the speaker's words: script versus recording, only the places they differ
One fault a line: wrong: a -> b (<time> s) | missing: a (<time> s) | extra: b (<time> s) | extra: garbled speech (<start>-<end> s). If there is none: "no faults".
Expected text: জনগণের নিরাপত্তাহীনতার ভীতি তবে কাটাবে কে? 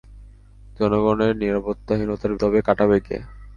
missing: ভীতি (2.3 s)